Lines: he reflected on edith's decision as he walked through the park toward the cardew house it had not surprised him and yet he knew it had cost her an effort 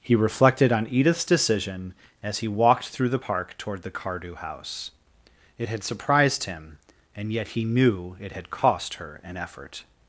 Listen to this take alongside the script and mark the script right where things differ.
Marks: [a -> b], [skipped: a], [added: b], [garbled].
he reflected on edith's decision as he walked through the park toward the cardew house it had [skipped: not] surprised him and yet he knew it had cost her an effort